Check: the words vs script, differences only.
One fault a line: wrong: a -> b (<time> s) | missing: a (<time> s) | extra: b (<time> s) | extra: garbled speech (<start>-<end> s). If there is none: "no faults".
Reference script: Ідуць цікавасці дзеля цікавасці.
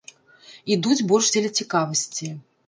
wrong: цікавасці -> больш (1.1 s)